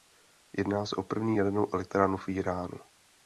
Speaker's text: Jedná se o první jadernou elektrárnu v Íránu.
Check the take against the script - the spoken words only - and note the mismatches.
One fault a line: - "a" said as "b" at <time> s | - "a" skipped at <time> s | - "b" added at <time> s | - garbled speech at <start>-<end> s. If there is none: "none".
none